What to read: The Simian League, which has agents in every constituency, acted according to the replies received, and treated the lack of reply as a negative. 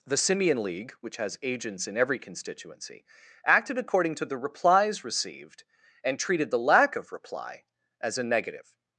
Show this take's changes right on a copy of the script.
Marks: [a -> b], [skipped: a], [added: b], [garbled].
The Simian League, which has agents in every constituency, acted according to the replies received, and treated the lack of reply as a negative.